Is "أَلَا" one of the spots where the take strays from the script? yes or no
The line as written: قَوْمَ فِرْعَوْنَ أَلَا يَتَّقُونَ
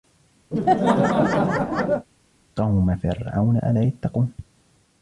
no